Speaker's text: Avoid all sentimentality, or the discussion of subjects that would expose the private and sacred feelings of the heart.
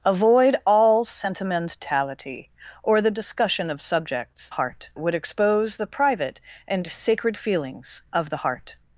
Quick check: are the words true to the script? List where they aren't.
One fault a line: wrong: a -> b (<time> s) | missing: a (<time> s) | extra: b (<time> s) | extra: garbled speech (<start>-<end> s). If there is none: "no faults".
wrong: that -> heart (4.5 s)